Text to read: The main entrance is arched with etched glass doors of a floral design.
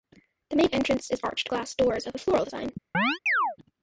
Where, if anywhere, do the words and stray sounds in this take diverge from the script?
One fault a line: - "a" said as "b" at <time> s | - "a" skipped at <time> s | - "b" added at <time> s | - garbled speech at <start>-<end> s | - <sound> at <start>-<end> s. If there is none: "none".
- "with etched" skipped at 1.5 s
- chirp at 2.9-3.6 s